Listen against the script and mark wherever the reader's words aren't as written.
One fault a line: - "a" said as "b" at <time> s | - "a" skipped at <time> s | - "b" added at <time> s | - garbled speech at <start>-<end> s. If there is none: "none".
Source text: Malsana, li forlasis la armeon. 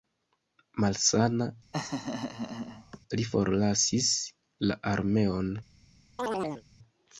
none